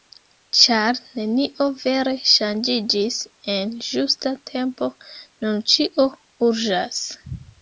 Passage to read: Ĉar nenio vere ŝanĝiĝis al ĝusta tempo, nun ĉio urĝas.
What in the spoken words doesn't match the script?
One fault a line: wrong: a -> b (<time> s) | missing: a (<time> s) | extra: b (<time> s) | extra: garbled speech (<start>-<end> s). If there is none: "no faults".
wrong: al -> en (3.6 s)